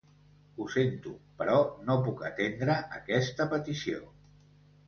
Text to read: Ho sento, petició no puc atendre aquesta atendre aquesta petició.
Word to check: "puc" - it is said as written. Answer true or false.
true